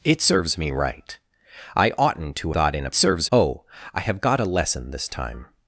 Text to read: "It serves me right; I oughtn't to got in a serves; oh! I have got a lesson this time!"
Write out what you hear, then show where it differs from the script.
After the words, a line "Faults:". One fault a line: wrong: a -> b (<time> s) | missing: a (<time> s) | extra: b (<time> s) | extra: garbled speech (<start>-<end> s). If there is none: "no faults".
"It serves me right; I oughtn't to got in a serves; oh! I have got a lesson this time!"
Faults:
no faults